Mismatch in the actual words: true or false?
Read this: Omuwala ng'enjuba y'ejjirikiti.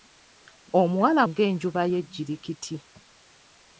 false